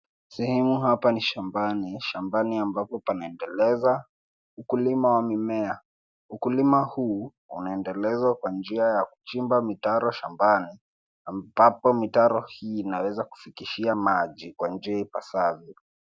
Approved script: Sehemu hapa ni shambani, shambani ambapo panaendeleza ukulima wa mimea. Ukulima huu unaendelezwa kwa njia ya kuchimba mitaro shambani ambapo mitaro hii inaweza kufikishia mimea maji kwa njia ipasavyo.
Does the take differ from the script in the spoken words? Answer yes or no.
yes